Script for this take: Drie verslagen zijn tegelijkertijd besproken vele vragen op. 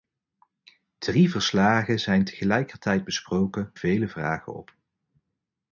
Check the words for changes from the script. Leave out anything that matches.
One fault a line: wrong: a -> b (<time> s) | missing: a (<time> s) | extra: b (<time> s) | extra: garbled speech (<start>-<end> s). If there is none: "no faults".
no faults